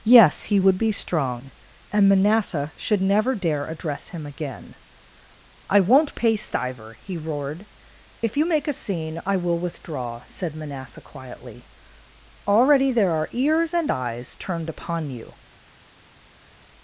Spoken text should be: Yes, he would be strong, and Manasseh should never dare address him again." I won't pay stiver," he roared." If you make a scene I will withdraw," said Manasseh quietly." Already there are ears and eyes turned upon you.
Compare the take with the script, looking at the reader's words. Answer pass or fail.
pass